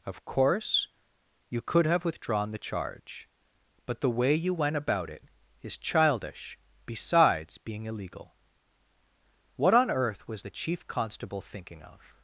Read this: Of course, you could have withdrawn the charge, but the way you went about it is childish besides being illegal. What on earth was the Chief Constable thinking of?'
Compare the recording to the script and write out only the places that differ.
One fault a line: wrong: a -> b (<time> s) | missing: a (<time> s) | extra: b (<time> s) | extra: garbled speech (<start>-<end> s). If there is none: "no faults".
no faults